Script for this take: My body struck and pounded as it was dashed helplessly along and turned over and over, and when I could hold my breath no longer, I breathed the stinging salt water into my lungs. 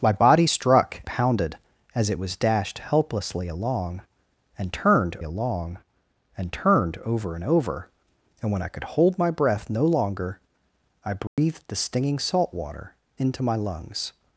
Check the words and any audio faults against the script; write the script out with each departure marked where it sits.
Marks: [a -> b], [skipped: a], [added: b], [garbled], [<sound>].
My body struck [skipped: and] pounded as it was dashed helplessly along and turned [added: along and turned] over and over, and when I could hold my breath no longer, I breathed [dropout] the stinging salt water into my lungs.